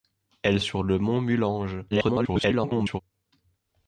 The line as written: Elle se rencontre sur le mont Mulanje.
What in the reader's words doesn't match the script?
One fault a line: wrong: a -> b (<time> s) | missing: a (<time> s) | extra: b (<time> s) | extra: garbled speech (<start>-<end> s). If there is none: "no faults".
missing: se rencontre (0.6 s)
extra: garbled speech (1.9-3.0 s)